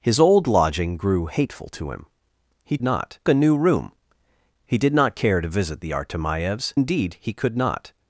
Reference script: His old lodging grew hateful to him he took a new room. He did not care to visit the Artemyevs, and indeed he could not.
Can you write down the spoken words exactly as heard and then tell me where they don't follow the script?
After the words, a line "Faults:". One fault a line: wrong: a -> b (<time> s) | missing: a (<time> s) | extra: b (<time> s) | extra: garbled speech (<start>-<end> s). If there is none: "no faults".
His old lodging grew hateful to him he not a new room. He did not care to visit the Artemyevs, indeed he could not.
Faults:
wrong: took -> not (2.8 s)
missing: and (6.7 s)